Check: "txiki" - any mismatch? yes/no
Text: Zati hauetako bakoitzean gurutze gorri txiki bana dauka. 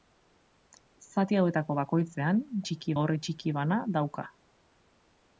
no